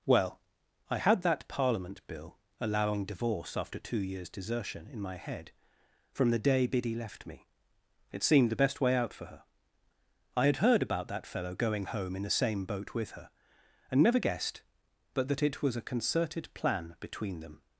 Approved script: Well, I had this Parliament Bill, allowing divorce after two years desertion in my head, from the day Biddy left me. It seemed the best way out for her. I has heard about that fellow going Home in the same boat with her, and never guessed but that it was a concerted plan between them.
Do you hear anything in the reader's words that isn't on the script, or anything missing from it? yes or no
yes